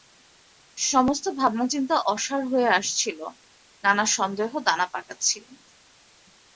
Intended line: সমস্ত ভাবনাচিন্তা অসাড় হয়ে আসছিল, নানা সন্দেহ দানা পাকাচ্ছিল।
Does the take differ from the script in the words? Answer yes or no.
no